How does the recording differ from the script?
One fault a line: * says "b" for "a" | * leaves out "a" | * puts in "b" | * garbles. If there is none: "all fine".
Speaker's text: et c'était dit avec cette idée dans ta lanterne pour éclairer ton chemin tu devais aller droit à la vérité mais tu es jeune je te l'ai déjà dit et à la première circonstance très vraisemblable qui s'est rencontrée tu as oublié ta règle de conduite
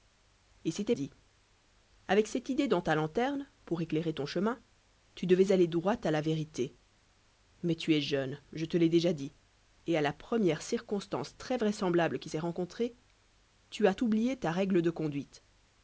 all fine